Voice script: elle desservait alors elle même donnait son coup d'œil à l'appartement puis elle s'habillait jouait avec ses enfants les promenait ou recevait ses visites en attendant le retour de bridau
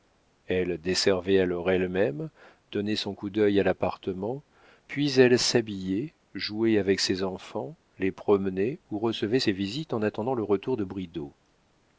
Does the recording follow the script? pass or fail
pass